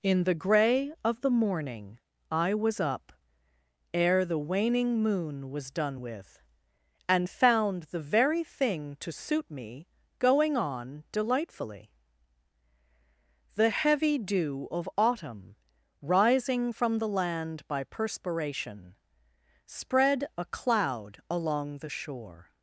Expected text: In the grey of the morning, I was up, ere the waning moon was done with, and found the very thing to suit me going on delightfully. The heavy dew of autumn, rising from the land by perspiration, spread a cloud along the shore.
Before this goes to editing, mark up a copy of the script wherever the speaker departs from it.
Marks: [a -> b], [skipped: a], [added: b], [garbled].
In the grey of the morning, I was up, ere the waning moon was done with, and found the very thing to suit me going on delightfully. The heavy dew of autumn, rising from the land by perspiration, spread a cloud along the shore.